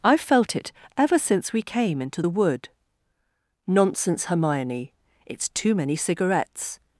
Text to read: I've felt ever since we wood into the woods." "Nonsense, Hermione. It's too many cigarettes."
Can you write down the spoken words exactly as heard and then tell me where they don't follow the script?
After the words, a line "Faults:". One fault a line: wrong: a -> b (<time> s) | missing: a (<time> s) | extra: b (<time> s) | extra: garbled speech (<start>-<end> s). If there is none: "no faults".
I've felt it ever since we came into the wood." "Nonsense, Hermione. It's too many cigarettes."
Faults:
extra: it (0.6 s)
wrong: wood -> came (1.6 s)
wrong: woods -> wood (2.3 s)